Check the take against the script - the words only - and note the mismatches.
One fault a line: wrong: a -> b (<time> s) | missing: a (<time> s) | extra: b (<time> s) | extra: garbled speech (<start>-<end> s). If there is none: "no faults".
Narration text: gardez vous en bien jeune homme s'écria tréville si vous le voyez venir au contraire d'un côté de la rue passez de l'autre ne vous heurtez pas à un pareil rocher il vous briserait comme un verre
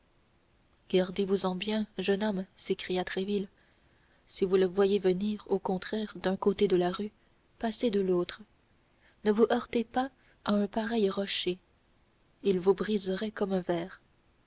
no faults